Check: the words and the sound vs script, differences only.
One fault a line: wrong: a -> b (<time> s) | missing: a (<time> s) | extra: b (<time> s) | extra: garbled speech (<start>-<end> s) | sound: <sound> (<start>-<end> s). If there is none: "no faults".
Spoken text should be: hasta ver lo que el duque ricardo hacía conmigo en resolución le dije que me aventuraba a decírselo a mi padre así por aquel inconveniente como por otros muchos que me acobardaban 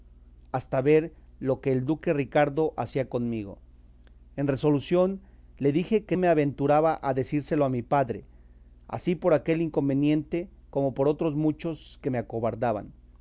no faults